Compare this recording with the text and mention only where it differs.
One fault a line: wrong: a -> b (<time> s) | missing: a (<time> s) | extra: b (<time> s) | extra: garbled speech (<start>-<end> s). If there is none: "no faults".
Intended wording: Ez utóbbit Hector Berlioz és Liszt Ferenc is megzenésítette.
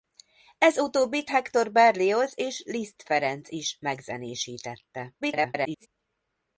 extra: garbled speech (5.2-5.9 s)